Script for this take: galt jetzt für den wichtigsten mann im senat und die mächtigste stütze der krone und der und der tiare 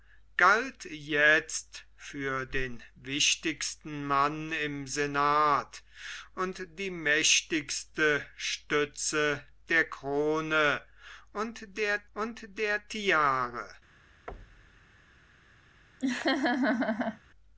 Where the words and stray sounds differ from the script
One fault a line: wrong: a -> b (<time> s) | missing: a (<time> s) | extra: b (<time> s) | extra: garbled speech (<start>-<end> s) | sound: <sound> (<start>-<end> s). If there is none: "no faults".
sound: thud (14.3-14.9 s)
sound: laugh (16.0-17.2 s)